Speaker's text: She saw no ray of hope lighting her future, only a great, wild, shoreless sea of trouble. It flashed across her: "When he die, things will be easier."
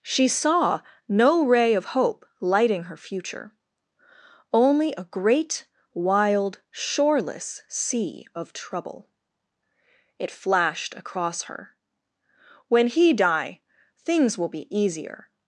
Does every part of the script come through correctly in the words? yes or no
yes